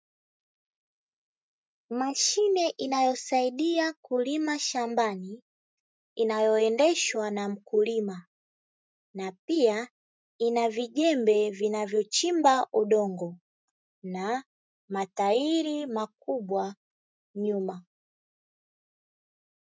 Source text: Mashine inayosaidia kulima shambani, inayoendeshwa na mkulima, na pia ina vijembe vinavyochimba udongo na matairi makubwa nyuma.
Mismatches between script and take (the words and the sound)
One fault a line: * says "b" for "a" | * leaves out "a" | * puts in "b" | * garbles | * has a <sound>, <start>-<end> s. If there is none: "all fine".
all fine